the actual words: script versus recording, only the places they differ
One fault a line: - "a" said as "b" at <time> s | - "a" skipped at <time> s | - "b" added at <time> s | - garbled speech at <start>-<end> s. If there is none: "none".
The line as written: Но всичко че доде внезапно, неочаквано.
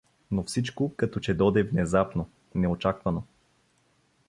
- "като" added at 1.0 s